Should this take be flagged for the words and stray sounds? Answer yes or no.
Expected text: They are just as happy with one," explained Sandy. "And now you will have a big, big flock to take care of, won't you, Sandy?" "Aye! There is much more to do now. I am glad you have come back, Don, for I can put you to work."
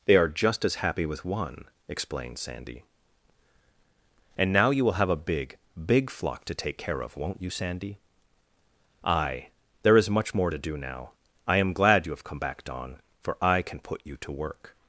no